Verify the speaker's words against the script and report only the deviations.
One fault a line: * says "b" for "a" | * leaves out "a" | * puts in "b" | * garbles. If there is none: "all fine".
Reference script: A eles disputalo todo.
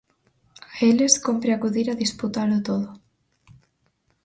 * puts in "cómpre acudir a"